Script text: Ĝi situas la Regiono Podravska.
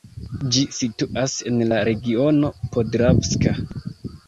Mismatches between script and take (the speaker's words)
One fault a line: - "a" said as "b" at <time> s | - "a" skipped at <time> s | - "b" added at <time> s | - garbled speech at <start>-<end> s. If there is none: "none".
- "en" added at 1.5 s